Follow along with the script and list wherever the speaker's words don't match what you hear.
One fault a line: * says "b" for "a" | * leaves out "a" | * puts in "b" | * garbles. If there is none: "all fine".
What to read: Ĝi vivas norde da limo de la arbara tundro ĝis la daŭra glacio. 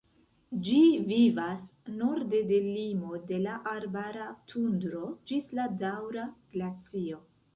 * says "de" for "da"